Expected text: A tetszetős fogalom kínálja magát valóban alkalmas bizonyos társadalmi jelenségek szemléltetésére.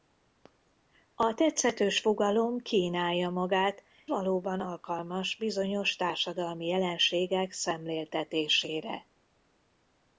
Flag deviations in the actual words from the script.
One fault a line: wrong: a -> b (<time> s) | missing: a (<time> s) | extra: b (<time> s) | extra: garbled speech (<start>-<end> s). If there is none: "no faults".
no faults